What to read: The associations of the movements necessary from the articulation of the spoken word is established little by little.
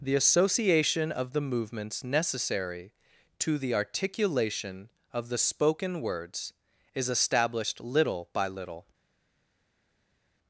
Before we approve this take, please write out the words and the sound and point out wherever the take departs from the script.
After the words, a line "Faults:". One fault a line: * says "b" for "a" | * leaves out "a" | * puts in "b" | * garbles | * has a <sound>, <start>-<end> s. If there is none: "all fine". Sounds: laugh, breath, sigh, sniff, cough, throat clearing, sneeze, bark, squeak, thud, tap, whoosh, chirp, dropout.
The association of the movements necessary to the articulation of the spoken words is established little by little.
Faults:
* says "association" for "associations"
* says "to" for "from"
* says "words" for "word"